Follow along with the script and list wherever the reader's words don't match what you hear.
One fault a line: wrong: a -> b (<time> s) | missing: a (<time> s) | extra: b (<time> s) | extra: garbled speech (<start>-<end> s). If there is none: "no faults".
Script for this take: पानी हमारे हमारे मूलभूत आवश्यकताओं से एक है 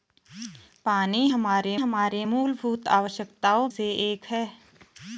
no faults